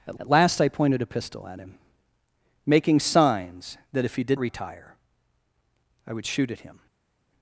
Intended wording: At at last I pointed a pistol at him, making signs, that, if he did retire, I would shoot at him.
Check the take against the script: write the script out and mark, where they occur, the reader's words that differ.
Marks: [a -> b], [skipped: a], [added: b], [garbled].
At at last I pointed a pistol at him, making signs, that, if he did retire, I would shoot at him.